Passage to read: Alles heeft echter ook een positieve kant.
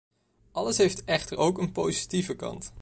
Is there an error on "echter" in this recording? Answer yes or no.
no